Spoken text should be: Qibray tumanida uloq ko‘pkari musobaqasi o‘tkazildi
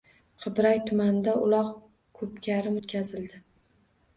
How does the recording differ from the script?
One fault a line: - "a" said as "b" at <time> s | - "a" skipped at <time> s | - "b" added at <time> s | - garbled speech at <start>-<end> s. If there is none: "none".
- "musobaqasi" skipped at 2.7 s